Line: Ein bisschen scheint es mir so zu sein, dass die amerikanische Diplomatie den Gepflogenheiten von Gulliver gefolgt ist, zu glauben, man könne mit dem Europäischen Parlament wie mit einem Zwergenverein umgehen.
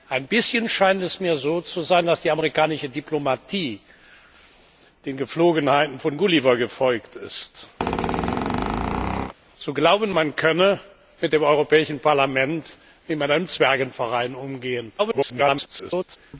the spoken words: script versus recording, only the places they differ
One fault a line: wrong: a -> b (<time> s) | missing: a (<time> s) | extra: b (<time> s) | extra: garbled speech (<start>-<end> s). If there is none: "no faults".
extra: garbled speech (15.0-16.2 s)